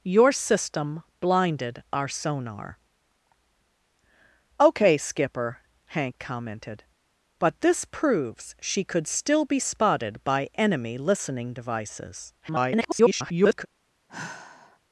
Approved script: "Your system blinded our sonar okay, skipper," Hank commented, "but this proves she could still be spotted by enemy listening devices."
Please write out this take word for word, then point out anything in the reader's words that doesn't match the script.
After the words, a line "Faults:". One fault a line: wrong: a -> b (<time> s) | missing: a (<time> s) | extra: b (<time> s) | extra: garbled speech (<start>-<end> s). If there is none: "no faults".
"Your system blinded our sonar okay, skipper," Hank commented, "but this proves she could still be spotted by enemy listening devices." [garbled]
Faults:
extra: garbled speech (12.4-13.7 s)